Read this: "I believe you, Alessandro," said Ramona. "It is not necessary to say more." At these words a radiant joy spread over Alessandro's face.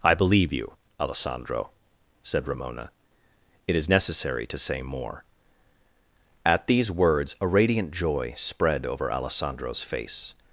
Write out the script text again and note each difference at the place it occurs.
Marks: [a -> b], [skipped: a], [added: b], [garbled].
"I believe you, Alessandro," said Ramona. "It is [skipped: not] necessary to say more." At these words a radiant joy spread over Alessandro's face.